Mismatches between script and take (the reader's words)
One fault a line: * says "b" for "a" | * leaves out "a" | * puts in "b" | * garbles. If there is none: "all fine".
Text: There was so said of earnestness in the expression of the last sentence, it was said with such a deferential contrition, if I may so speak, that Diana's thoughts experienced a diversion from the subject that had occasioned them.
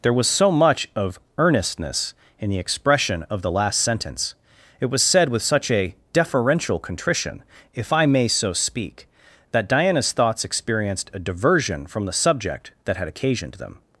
* says "much" for "said"